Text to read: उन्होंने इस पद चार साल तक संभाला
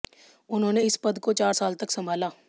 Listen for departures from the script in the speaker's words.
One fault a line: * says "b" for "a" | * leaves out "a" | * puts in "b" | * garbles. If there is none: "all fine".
* puts in "को"